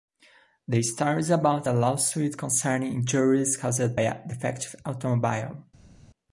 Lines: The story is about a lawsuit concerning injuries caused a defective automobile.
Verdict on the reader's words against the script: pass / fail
pass